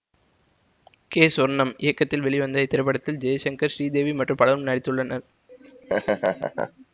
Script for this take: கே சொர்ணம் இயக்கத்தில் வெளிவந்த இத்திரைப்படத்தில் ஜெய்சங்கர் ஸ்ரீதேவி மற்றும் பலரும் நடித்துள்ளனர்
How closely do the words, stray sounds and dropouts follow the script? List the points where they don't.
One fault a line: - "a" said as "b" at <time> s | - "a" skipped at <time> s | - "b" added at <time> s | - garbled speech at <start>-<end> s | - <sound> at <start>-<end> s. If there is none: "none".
- laugh at 5.5-6.9 s